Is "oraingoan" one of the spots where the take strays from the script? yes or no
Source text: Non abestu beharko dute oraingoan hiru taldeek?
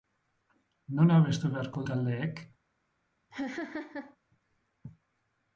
yes